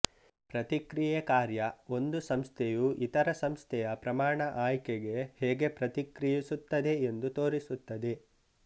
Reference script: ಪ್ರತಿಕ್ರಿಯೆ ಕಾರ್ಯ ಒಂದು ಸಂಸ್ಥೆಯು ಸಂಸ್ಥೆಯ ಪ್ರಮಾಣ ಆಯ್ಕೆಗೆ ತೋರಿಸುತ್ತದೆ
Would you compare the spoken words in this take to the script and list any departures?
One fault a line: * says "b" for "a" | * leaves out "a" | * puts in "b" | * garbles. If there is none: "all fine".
* puts in "ಇತರ"
* puts in "ಹೇಗೆ ಪ್ರತಿಕ್ರಿಯಿಸುತ್ತದೆ ಎಂದು"